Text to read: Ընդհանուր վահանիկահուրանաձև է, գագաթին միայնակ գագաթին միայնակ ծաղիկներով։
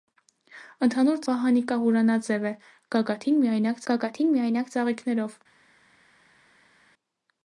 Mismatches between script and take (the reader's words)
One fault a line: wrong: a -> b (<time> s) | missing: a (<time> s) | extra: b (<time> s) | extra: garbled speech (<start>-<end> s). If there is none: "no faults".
no faults